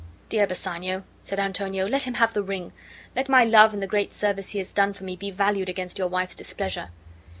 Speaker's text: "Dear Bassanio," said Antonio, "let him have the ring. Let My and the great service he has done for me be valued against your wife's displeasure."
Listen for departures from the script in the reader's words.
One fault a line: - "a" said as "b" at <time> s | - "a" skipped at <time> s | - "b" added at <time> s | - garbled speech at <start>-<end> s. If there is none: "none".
- "love" added at 3.4 s